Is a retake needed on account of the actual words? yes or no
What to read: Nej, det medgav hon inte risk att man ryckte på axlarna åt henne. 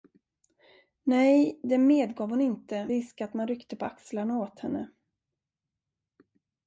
no